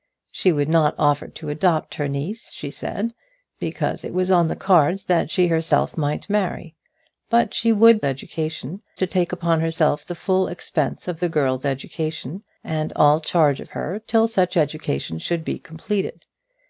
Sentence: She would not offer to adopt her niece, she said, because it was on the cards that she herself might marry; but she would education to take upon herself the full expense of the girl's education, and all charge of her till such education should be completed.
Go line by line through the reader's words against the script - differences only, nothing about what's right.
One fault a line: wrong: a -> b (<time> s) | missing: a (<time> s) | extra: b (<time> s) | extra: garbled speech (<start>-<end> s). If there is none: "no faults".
no faults